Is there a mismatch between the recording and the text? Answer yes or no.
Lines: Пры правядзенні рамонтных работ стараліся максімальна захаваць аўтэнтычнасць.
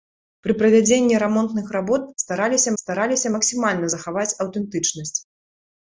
yes